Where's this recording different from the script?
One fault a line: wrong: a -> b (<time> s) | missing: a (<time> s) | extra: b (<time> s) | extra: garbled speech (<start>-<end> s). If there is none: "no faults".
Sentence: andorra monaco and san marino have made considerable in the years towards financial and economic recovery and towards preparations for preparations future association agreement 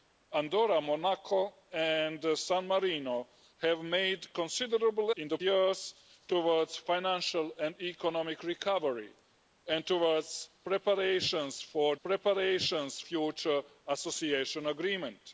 no faults